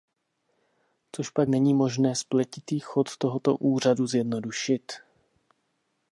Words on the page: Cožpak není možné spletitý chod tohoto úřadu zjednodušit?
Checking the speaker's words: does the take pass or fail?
pass